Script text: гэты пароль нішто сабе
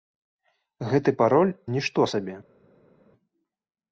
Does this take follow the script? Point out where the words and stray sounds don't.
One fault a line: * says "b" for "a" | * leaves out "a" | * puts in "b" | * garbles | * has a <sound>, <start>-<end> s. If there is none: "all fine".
all fine